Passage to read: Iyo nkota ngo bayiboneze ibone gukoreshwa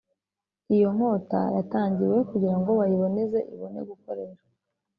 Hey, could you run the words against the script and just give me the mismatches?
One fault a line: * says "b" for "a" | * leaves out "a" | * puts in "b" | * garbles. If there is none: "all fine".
* puts in "yatangiwe kugira"